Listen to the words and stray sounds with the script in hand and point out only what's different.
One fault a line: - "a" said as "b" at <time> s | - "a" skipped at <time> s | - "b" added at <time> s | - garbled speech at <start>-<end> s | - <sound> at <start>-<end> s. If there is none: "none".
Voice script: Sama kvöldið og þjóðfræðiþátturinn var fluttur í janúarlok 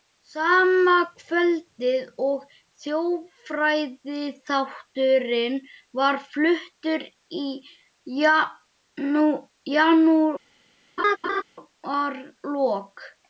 - laugh at 11.0-11.4 s